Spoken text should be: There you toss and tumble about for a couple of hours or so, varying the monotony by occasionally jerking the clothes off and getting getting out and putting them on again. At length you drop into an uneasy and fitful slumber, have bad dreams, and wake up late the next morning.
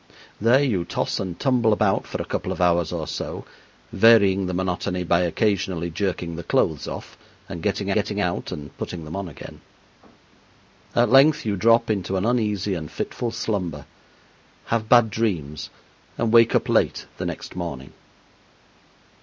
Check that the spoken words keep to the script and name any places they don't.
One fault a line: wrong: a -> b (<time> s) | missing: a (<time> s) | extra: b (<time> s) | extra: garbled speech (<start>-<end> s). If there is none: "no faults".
no faults